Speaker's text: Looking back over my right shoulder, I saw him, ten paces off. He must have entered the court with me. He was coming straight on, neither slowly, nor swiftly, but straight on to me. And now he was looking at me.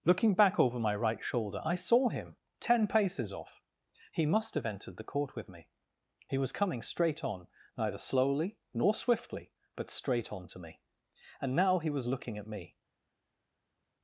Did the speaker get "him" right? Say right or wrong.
right